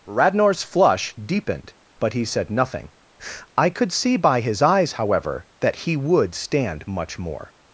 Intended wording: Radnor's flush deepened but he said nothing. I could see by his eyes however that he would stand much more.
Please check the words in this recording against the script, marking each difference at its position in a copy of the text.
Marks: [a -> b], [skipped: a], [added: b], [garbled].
Radnor's flush deepened but he said nothing. I could see by his eyes however that he would stand much more.